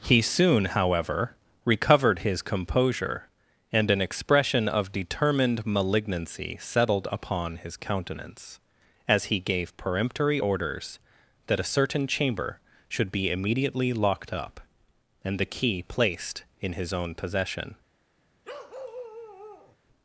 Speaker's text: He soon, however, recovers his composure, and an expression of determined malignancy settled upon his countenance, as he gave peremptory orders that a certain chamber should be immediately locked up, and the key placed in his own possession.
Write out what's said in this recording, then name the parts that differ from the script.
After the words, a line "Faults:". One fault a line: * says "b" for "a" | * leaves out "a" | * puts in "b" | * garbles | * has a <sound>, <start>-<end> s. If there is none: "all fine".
He soon, however, recovered his composure, and an expression of determined malignancy settled upon his countenance, as he gave peremptory orders that a certain chamber should be immediately locked up, and the key placed in his own possession.
Faults:
* says "recovered" for "recovers"
* has a bark, 18.4-19.8 s